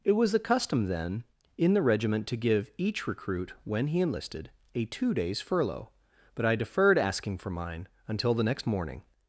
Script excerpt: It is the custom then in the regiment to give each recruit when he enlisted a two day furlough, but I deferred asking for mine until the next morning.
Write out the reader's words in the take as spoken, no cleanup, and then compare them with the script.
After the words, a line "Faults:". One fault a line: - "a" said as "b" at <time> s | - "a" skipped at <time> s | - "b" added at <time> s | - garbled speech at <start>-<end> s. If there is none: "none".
It was the custom then in the regiment to give each recruit when he enlisted a two days furlough, but I deferred asking for mine until the next morning.
Faults:
- "is" said as "was" at 0.1 s
- "day" said as "days" at 5.1 s